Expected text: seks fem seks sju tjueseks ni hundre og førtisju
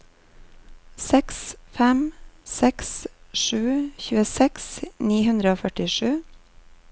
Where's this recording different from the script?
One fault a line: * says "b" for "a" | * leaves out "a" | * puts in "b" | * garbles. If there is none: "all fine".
all fine